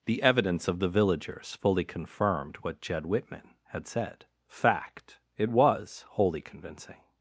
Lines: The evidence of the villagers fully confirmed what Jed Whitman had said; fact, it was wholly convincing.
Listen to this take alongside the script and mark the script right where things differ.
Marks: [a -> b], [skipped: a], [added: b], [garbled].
The evidence of the villagers fully confirmed what Jed Whitman had said; fact, it was wholly convincing.